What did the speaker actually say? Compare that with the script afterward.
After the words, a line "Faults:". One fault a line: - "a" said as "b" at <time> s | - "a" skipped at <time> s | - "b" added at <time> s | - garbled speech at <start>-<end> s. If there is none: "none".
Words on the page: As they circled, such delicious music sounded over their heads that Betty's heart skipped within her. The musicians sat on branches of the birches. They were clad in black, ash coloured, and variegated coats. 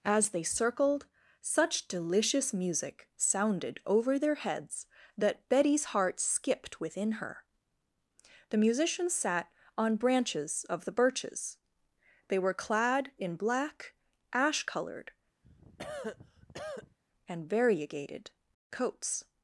As they circled, such delicious music sounded over their heads that Betty's heart skipped within her. The musicians sat on branches of the birches. They were clad in black, ash coloured, and variegated coats.
Faults:
none